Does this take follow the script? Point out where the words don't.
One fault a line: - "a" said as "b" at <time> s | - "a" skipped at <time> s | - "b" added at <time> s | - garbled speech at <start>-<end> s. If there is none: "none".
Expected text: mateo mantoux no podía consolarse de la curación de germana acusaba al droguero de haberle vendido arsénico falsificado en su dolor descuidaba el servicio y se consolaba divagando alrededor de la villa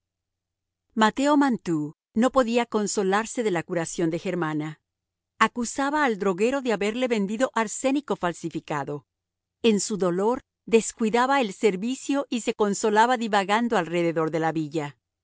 none